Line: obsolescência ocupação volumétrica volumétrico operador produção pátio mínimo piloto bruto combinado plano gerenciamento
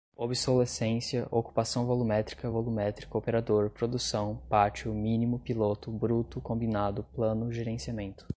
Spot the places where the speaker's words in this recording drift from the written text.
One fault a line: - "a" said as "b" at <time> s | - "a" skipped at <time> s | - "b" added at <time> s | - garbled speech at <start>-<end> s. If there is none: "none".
none